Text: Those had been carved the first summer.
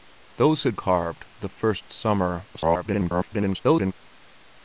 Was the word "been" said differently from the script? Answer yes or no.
yes